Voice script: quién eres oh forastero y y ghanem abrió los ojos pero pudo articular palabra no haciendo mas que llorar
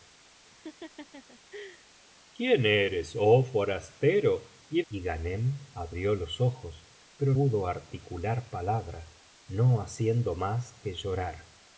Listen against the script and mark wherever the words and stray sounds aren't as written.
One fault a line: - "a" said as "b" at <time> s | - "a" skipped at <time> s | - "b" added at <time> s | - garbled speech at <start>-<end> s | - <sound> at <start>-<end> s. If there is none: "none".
- laugh at 0.4-1.9 s